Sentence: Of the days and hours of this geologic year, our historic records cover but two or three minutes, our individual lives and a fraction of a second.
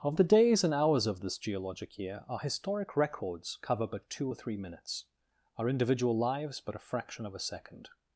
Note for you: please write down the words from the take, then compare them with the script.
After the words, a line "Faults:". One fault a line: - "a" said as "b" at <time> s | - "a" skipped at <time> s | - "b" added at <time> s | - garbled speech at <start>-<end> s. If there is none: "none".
Of the days and hours of this geologic year, our historic records cover but two or three minutes, our individual lives but a fraction of a second.
Faults:
- "and" said as "but" at 6.6 s